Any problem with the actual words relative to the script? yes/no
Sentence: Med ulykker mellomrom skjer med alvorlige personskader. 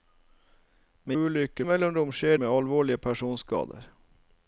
no